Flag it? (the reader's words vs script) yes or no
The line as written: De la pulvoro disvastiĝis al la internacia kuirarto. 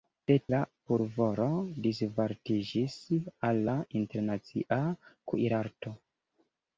no